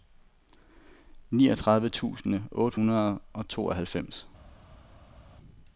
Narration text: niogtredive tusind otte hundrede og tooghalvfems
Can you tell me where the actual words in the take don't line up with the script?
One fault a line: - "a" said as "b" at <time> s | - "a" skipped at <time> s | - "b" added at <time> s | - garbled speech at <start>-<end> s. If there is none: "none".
none